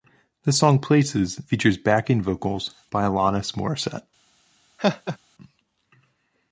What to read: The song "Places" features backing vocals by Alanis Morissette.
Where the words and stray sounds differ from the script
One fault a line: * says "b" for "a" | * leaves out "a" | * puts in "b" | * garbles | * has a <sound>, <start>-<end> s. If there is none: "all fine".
* has a laugh, 4.8-5.2 s